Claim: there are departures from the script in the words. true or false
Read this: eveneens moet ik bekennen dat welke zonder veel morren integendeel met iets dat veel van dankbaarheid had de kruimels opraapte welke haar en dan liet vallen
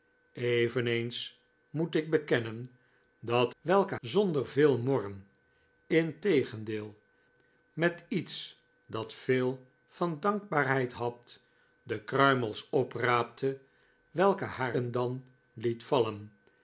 false